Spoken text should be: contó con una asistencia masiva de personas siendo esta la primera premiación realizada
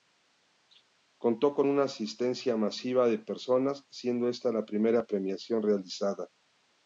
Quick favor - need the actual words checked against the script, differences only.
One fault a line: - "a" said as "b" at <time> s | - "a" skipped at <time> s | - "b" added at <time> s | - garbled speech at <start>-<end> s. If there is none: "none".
none